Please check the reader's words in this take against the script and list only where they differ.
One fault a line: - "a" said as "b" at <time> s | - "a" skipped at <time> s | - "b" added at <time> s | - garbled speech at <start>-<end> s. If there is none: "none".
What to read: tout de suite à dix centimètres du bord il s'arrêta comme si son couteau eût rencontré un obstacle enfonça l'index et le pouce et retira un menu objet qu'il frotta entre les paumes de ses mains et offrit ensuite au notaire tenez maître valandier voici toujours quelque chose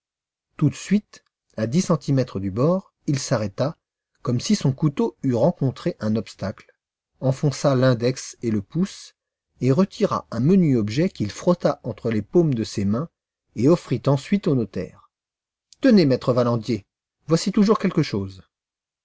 none